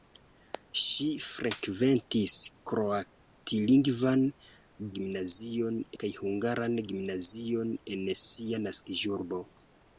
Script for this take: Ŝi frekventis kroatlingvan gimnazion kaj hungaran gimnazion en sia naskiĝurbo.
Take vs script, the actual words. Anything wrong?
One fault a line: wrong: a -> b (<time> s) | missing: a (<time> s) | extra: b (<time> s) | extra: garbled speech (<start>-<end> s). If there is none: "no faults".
no faults